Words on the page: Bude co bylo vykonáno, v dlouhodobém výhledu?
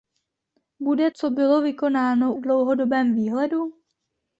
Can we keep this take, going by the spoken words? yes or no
yes